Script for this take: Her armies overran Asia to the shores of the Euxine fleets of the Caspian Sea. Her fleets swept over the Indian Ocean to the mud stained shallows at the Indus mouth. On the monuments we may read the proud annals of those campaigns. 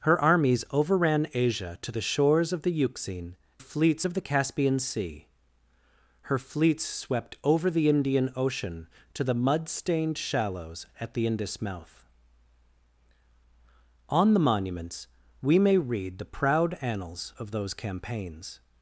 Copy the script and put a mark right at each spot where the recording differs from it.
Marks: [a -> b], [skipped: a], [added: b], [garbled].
Her armies overran Asia to the shores of the Euxine fleets of the Caspian Sea. Her fleets swept over the Indian Ocean to the mud stained shallows at the Indus mouth. On the monuments we may read the proud annals of those campaigns.